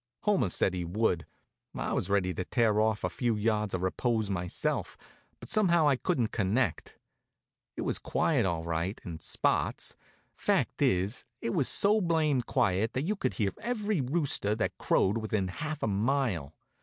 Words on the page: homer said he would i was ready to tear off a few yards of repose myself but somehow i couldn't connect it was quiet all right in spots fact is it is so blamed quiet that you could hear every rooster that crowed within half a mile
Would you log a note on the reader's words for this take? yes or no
yes